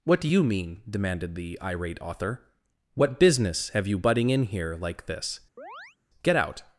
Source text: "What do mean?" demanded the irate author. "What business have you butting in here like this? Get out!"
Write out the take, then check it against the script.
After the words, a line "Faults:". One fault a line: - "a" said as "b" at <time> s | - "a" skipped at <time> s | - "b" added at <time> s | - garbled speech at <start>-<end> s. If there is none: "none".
"What do you mean?" demanded the irate author. "What business have you butting in here like this? Get out!"
Faults:
- "you" added at 0.3 s